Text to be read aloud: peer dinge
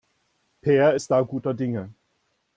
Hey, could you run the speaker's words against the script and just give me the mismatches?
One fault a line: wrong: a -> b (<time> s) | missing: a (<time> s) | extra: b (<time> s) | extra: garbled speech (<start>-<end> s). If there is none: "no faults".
extra: ist da guter (0.9 s)